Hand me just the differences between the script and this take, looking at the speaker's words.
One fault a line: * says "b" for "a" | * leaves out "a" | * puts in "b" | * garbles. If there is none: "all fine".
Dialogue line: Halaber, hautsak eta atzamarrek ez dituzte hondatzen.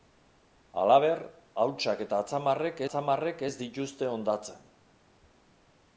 * puts in "atzamarrek"